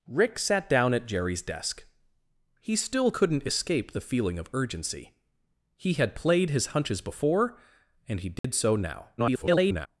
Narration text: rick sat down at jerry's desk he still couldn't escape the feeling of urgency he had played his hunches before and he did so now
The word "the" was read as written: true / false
true